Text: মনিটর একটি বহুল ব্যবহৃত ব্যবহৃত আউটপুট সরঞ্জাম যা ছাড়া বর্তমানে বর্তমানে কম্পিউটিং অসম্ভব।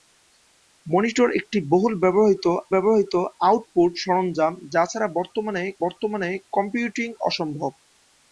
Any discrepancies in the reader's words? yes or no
no